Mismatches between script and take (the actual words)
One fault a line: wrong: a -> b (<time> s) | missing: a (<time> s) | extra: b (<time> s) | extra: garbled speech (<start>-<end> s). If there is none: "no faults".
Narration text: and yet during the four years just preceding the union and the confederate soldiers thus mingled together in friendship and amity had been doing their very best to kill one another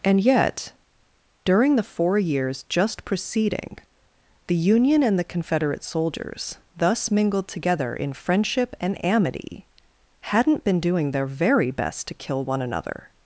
wrong: had -> hadn't (10.2 s)